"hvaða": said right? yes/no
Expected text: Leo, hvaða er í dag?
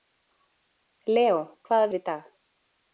yes